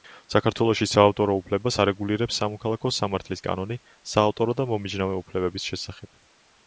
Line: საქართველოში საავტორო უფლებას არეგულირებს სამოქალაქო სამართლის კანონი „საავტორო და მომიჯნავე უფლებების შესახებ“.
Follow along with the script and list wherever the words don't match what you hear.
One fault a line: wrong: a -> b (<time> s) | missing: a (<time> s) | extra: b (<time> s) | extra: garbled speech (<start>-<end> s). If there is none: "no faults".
no faults